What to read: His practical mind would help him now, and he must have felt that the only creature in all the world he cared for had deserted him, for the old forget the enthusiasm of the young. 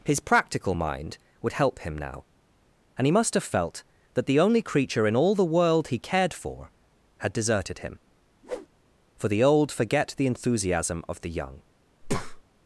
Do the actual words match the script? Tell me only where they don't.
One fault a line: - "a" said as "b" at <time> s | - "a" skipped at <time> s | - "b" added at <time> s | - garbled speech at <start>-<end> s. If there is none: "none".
none